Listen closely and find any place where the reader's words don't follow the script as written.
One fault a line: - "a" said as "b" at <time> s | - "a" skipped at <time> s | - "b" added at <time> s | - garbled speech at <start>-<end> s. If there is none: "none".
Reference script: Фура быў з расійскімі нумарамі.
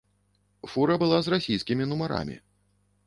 - "быў" said as "была" at 1.0 s